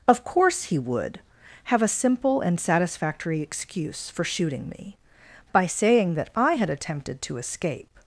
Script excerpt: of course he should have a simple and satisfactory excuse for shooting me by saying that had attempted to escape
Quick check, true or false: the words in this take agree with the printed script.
false